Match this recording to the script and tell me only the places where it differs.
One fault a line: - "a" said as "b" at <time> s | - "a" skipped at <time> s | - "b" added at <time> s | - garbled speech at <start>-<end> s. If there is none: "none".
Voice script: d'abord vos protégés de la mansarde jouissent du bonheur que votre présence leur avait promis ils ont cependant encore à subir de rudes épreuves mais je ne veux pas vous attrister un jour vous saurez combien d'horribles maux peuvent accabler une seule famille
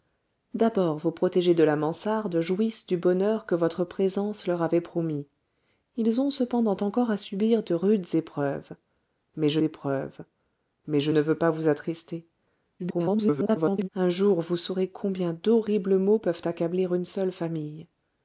- "épreuves mais je" added at 9.6 s
- garbled speech at 12.8-13.9 s